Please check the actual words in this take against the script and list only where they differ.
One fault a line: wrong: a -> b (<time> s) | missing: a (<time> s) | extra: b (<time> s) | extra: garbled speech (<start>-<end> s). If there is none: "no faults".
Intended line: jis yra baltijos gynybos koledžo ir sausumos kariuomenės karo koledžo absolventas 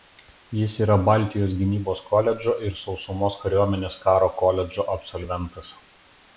no faults